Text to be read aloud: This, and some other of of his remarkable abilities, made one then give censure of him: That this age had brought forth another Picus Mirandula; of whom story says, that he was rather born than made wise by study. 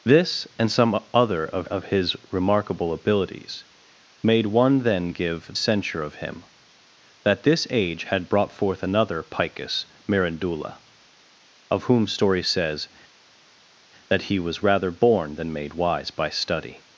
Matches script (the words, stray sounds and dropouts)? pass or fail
pass